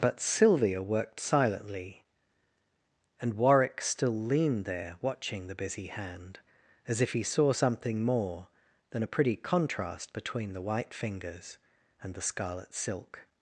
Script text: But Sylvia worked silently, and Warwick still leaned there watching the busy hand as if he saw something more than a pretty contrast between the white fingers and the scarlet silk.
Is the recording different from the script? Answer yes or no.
no